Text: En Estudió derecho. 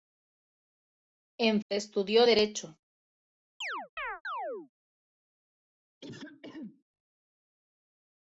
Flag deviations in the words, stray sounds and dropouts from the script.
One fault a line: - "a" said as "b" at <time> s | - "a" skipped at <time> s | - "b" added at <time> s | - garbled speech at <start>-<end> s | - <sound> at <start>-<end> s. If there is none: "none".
- chirp at 3.6-4.7 s
- throat clearing at 6.0-6.8 s